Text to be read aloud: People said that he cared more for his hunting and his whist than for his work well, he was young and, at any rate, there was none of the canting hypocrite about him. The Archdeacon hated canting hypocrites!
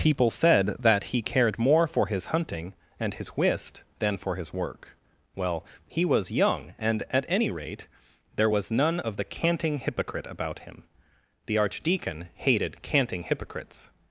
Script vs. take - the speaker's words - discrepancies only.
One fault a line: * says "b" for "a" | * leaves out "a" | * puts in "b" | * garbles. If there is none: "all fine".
all fine